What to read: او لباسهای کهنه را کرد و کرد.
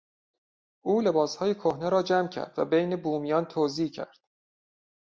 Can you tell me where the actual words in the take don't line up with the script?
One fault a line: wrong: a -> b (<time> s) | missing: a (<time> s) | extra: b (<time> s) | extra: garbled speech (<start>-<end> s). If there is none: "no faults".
extra: جمع (2.0 s)
extra: بین بومیان توزیع (2.7 s)